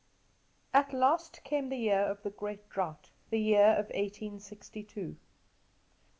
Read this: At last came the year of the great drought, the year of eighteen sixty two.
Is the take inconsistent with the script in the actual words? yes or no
no